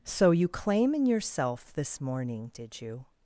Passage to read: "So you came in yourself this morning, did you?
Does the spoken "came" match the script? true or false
false